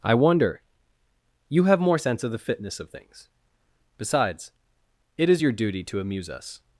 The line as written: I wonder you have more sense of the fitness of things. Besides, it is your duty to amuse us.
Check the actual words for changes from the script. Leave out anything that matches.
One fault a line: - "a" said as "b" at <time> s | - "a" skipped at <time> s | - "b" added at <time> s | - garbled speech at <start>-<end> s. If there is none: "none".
none